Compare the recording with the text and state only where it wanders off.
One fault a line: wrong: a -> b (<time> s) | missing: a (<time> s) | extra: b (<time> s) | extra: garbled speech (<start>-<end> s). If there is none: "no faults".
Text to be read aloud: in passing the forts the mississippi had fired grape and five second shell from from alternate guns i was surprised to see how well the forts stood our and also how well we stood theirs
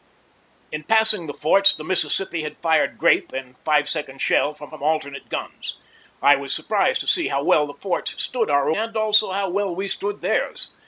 no faults